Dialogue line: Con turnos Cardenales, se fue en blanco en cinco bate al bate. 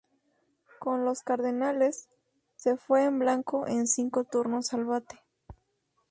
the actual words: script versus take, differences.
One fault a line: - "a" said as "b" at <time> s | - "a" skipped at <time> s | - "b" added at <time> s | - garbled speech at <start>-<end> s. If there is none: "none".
- "turnos" said as "los" at 1.1 s
- "bate" said as "turnos" at 4.2 s